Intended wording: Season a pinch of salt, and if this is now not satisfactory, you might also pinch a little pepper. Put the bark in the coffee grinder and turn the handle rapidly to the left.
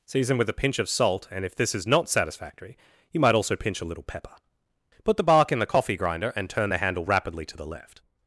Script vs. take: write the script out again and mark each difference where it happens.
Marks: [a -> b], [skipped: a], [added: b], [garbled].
Season [added: with] a pinch of salt, and if this is [skipped: now] not satisfactory, you might also pinch a little pepper. Put the bark in the coffee grinder and turn the handle rapidly to the left.